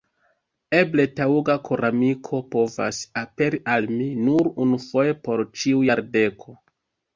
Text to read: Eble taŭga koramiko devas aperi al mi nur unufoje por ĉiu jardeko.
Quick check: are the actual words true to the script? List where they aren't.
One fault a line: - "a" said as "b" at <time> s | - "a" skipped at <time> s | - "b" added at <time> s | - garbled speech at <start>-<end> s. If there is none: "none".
- "devas" said as "povas" at 2.5 s